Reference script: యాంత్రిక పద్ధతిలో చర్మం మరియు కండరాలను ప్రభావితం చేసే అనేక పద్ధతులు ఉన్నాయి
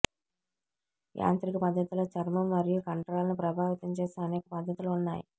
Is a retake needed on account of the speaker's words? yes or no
no